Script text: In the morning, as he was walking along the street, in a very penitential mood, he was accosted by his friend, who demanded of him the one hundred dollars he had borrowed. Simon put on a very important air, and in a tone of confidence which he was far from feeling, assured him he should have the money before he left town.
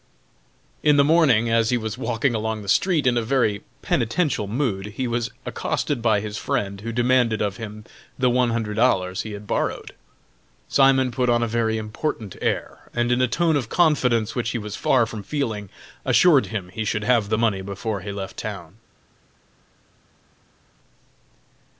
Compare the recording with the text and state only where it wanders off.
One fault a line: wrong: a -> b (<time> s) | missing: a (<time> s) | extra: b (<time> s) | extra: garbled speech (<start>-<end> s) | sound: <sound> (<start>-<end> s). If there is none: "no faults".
no faults